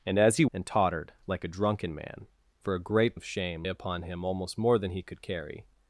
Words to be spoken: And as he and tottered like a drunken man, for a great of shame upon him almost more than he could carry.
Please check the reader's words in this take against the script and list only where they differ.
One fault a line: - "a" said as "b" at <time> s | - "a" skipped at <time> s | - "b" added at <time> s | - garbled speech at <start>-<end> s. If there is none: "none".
none